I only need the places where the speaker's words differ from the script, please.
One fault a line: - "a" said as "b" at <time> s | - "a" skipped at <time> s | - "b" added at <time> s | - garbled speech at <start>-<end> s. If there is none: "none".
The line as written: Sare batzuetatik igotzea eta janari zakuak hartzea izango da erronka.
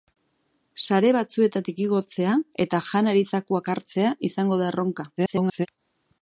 - garbled speech at 5.2-5.7 s